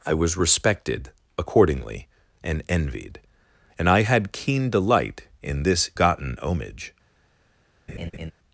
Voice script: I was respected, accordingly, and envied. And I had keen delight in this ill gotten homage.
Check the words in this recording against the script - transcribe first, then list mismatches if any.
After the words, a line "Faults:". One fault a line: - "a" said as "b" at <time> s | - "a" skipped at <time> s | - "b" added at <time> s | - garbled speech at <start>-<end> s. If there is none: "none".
I was respected, accordingly, and envied. And I had keen delight in this gotten homage.
Faults:
- "ill" skipped at 5.9 s